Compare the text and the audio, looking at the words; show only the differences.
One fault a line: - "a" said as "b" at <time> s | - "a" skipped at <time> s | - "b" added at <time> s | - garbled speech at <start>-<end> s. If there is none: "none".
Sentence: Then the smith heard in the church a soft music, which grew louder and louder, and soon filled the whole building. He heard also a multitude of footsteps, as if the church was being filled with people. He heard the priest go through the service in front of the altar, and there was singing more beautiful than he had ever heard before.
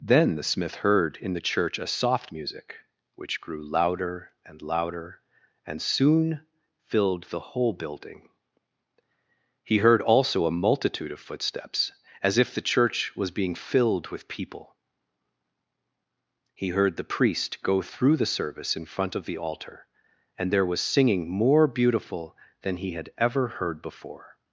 none